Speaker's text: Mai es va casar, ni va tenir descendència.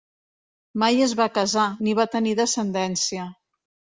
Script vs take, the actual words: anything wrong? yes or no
no